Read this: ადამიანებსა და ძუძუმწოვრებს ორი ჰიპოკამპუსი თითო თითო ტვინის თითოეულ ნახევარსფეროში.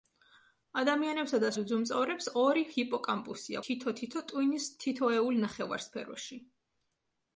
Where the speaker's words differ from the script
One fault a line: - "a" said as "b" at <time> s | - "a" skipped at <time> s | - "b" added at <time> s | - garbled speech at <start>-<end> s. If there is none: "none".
none